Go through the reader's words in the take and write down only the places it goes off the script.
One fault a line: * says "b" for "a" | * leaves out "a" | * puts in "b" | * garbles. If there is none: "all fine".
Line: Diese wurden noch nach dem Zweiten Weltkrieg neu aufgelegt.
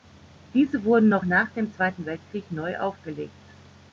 all fine